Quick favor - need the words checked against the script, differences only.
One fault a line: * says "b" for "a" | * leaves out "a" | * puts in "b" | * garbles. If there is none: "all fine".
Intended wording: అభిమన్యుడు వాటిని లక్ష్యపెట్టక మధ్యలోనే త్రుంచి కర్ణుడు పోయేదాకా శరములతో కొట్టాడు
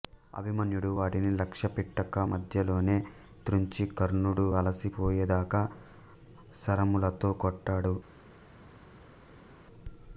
* puts in "అలసి"